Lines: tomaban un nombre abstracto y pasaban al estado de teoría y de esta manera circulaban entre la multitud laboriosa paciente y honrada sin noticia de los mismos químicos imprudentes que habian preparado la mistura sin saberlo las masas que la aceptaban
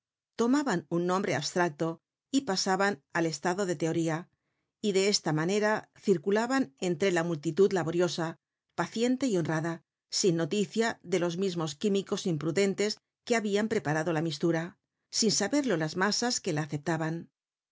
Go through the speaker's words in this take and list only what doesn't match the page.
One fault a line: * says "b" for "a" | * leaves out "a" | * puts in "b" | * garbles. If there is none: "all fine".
all fine